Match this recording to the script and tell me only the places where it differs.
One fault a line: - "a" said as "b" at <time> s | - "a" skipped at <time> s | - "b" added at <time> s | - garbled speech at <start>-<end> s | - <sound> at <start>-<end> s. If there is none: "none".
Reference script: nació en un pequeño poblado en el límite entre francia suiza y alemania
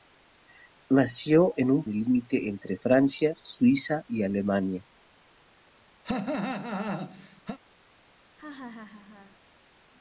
- "pequeño poblado en" skipped at 1.9 s
- cough at 6.0-7.6 s
- laugh at 8.4-9.4 s